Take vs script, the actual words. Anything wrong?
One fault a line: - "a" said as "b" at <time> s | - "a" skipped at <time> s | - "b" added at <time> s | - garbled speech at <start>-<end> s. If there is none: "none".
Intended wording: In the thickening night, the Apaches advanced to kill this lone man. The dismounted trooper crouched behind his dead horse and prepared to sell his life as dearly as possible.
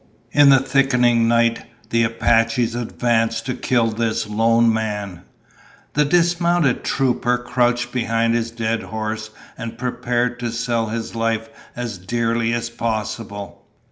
none